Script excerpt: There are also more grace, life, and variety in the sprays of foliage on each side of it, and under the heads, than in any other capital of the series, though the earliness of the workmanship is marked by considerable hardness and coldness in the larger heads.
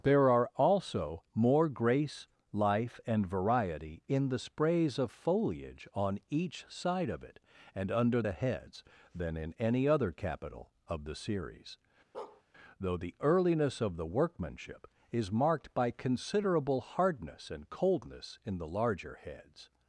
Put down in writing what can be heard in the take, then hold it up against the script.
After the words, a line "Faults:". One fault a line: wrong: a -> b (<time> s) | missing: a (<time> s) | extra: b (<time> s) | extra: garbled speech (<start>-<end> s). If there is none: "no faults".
There are also more grace, life, and variety in the sprays of foliage on each side of it, and under the heads, than in any other capital of the series, though the earliness of the workmanship is marked by considerable hardness and coldness in the larger heads.
Faults:
no faults